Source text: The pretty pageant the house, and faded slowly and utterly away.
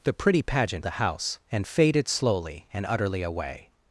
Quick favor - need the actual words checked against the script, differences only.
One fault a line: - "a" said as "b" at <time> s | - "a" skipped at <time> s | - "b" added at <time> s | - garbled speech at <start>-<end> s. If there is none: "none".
none